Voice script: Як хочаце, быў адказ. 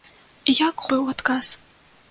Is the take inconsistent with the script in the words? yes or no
yes